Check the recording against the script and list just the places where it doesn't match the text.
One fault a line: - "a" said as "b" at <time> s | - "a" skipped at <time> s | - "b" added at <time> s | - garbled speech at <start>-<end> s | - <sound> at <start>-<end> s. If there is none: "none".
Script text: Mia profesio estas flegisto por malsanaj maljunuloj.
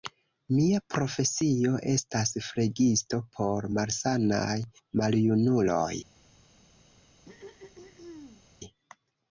- throat clearing at 7.3-8.4 s